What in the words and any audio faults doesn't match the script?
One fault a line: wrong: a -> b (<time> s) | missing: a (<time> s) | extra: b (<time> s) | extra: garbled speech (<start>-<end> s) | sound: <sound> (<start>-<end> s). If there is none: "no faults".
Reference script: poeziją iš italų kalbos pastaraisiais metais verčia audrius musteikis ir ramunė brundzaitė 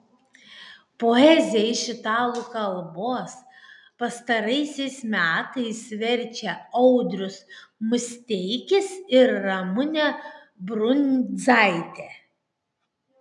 no faults